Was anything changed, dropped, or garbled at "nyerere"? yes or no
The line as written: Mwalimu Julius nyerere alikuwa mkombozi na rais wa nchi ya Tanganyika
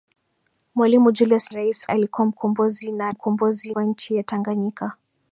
yes